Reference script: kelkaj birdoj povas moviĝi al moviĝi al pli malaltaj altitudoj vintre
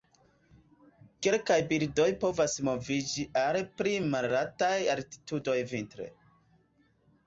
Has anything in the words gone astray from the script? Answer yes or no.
yes